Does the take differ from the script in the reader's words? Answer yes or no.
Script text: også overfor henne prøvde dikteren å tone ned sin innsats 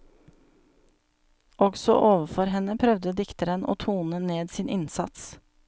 no